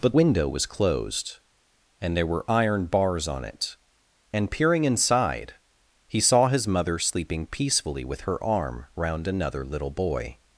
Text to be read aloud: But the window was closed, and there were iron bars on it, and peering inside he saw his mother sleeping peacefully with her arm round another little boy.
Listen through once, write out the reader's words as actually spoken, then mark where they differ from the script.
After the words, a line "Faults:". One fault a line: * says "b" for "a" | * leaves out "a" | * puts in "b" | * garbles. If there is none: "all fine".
But window was closed, and there were iron bars on it, and peering inside he saw his mother sleeping peacefully with her arm round another little boy.
Faults:
* leaves out "the"